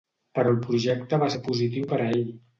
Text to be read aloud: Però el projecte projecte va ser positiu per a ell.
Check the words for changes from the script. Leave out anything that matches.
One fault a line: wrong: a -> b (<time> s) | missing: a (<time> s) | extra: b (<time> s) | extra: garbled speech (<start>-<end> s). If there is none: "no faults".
missing: projecte (1.2 s)